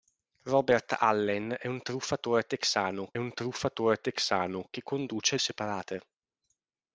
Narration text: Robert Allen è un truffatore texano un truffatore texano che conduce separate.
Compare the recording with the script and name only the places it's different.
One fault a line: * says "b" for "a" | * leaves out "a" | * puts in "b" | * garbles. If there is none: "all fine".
all fine